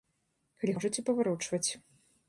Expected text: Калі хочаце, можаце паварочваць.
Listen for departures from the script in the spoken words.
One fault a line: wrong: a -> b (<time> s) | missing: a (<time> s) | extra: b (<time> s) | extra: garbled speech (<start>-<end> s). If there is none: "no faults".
missing: хочаце (0.7 s)